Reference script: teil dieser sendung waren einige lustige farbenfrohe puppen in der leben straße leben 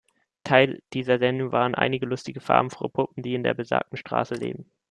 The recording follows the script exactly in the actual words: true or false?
false